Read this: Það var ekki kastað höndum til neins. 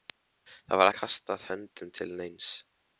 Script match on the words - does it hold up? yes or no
no